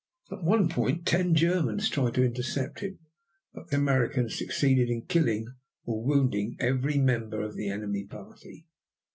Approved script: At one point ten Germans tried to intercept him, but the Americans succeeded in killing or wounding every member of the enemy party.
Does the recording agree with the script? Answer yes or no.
yes